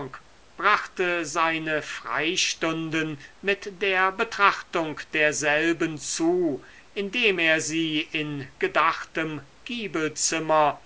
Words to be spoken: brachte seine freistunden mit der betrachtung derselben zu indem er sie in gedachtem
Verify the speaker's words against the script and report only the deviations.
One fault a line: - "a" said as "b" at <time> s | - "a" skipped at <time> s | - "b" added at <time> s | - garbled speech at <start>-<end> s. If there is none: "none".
none